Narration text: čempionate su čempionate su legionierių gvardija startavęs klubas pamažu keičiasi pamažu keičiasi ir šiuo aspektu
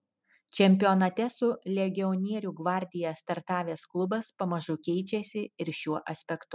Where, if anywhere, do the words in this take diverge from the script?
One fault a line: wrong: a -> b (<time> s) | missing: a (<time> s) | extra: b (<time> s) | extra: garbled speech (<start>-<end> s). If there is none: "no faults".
missing: čempionate su (1.5 s)
missing: pamažu keičiasi (5.5 s)